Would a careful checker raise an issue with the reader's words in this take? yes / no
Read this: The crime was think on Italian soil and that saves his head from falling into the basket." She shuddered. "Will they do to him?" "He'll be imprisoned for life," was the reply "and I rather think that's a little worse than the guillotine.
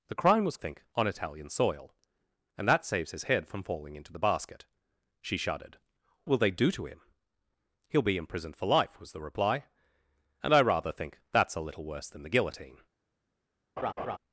no